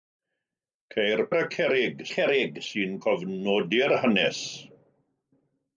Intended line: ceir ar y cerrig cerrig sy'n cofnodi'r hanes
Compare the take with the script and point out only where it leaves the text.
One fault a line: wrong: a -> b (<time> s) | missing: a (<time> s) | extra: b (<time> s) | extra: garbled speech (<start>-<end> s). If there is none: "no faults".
no faults